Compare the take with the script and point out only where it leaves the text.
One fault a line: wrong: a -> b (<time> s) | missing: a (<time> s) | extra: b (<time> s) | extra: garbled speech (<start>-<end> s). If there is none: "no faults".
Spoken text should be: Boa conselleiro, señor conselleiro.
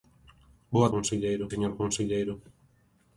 no faults